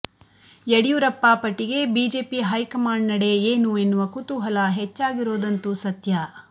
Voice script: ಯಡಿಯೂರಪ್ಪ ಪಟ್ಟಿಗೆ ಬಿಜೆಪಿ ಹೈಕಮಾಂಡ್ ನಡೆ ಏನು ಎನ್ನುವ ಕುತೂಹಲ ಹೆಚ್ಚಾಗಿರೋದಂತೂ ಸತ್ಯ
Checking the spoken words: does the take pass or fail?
pass